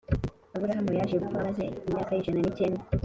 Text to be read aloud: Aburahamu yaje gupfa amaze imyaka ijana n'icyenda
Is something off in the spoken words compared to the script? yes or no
no